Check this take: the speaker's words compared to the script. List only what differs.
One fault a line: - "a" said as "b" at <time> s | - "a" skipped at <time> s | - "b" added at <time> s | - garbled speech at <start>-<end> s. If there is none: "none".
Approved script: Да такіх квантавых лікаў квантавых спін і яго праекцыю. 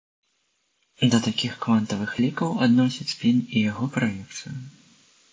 - "квантавых" said as "адносяць" at 2.7 s